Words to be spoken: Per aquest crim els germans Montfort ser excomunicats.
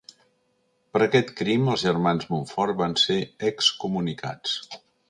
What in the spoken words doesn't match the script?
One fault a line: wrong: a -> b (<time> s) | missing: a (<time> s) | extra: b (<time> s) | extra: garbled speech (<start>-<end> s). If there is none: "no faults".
extra: van (2.8 s)